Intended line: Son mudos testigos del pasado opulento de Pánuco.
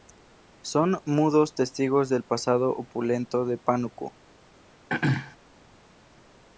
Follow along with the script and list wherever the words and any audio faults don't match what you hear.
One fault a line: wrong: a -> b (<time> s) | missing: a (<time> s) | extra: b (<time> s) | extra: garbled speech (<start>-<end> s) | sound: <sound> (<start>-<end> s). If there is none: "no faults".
sound: throat clearing (4.9-5.4 s)